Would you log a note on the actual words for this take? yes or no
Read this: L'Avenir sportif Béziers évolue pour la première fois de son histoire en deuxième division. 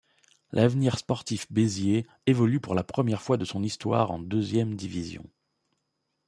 no